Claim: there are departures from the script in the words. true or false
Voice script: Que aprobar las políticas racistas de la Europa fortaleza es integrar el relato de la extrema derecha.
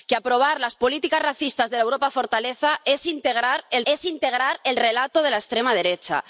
true